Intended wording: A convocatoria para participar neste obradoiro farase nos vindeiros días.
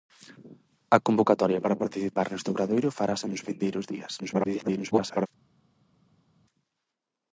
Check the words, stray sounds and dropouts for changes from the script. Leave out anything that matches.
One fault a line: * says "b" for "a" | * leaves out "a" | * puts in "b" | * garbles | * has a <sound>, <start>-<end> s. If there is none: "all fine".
* garbles